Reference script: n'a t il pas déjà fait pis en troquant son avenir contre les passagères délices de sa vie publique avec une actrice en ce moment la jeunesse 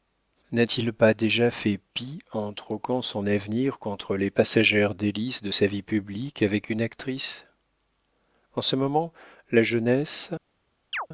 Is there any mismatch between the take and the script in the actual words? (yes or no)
no